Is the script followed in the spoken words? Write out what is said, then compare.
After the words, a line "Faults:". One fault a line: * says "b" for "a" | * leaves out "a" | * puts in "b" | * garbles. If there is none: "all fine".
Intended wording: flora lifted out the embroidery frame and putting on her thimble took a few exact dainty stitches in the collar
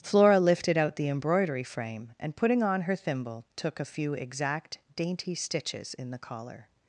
flora lifted out the embroidery frame and putting on her thimble took a few exact dainty stitches in the collar
Faults:
all fine